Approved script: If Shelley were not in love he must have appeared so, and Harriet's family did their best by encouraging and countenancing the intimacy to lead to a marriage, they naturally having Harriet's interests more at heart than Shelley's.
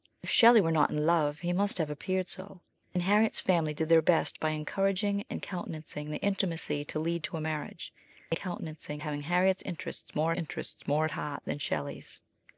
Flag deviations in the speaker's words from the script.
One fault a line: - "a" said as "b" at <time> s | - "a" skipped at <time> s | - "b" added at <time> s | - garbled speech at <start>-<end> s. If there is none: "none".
- "naturally" said as "countenancing" at 8.4 s
- "interests more" added at 10.3 s